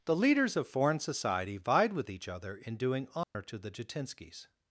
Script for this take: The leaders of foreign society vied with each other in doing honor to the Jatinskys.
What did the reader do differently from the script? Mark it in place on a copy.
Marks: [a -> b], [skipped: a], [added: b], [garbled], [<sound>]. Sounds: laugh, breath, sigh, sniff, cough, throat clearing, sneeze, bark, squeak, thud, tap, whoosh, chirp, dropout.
The leaders of foreign society vied with each other in doing honor [dropout] to the Jatinskys.